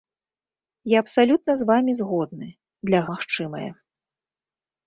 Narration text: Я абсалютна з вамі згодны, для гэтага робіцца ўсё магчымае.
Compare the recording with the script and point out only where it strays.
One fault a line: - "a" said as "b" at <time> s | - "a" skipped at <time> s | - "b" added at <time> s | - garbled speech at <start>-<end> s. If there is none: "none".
- "гэтага робіцца ўсё" skipped at 3.0 s